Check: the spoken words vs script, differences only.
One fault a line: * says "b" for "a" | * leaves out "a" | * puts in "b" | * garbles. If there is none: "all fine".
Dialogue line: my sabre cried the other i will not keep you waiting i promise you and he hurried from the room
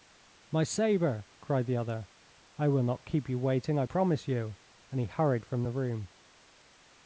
all fine